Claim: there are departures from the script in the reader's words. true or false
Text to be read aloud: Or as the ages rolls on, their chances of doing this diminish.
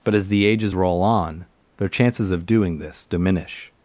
true